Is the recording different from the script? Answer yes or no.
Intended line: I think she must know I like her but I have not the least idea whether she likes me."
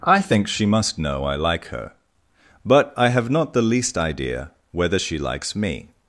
no